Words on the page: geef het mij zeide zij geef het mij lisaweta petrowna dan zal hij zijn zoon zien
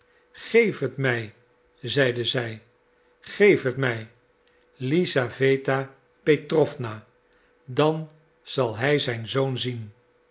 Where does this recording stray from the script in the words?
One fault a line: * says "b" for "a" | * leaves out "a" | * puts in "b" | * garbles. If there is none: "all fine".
all fine